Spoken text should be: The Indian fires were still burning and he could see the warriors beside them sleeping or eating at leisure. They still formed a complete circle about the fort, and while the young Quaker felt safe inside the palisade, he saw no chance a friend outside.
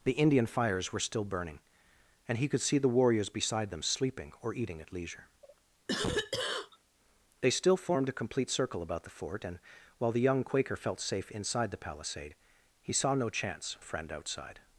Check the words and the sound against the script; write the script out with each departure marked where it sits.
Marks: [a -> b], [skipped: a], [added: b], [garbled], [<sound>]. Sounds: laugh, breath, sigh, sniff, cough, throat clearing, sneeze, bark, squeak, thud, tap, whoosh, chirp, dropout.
The Indian fires were still burning and he could see the warriors beside them sleeping or eating at leisure. [cough] They still formed a complete circle about the fort, and while the young Quaker felt safe inside the palisade, he saw no chance a friend outside.